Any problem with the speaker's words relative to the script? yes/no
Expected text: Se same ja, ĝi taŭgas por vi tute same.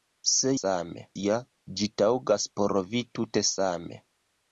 no